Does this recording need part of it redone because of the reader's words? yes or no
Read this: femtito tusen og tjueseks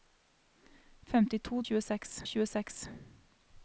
yes